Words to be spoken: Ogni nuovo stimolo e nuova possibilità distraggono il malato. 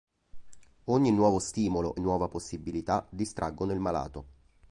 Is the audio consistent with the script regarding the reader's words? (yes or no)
yes